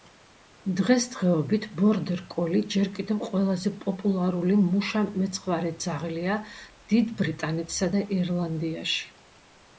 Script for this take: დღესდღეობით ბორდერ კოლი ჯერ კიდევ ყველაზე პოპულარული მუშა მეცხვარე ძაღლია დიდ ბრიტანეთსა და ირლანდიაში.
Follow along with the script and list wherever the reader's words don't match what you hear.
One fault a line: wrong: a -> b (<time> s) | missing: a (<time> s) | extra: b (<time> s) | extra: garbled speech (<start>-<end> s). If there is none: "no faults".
no faults